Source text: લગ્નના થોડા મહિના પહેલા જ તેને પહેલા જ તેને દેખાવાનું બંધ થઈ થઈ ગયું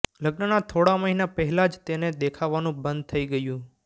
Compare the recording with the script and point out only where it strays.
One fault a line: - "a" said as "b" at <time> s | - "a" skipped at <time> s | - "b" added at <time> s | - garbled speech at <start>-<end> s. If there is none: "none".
- "પહેલા જ તેને" skipped at 2.1 s
- "થઈ" skipped at 3.2 s